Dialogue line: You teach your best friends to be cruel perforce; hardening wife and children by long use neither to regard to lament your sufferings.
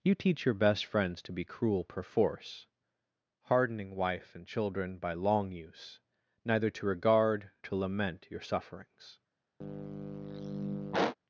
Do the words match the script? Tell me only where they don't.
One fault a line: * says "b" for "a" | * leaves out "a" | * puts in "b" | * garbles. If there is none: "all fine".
all fine